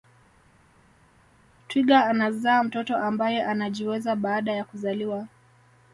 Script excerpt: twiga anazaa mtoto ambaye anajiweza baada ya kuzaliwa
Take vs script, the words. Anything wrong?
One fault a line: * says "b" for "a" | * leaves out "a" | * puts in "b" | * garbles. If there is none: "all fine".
all fine